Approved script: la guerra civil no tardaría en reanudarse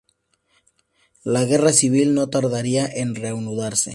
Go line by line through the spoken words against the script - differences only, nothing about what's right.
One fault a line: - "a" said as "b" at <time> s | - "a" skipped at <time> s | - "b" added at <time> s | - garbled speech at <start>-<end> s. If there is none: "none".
none